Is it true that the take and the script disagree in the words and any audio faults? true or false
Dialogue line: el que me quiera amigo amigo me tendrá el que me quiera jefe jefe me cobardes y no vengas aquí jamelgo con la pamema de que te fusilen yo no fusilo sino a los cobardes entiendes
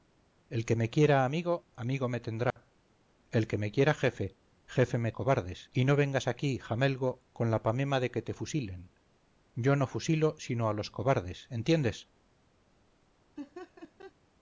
true